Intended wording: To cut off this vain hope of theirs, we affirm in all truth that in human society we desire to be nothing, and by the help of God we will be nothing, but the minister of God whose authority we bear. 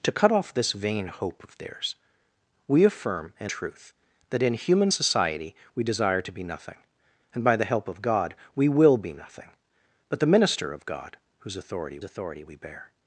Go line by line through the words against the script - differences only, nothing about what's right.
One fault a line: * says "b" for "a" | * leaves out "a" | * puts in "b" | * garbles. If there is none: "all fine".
* leaves out "all"
* puts in "authority"